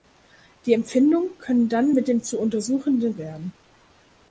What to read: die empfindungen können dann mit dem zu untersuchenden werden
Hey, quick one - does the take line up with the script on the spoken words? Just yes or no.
yes